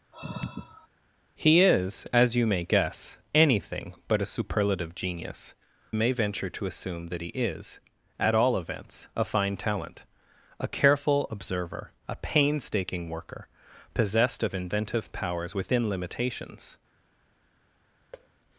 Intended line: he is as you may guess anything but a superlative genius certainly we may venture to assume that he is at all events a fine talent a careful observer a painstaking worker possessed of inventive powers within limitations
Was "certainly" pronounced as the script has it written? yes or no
no